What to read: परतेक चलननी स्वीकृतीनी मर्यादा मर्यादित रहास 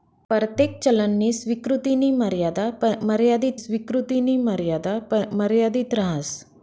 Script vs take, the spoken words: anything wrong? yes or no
yes